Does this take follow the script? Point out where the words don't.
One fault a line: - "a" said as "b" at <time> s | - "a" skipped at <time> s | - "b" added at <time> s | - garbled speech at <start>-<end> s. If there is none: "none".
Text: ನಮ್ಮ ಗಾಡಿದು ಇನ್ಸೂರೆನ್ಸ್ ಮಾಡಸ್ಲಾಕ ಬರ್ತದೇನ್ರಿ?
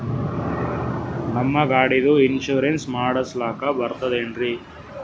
none